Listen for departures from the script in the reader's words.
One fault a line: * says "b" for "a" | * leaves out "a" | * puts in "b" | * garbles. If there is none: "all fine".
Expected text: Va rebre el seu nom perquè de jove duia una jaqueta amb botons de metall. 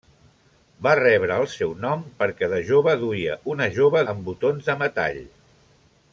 * says "jove" for "jaqueta"